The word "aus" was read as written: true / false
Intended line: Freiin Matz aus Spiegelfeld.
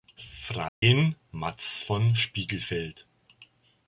false